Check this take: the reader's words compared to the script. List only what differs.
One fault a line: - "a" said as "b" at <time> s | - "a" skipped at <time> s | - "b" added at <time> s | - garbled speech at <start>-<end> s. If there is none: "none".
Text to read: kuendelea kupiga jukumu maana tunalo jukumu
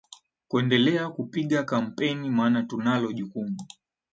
- "jukumu" said as "kampeni" at 1.6 s